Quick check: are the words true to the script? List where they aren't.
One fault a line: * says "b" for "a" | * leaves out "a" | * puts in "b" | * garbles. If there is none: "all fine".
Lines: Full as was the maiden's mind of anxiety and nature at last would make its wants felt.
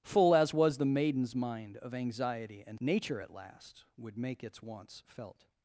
all fine